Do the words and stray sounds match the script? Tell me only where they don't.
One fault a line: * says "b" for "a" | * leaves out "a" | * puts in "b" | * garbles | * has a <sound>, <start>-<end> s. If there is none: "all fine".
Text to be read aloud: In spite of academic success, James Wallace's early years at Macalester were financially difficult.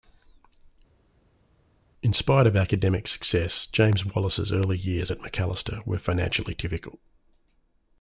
all fine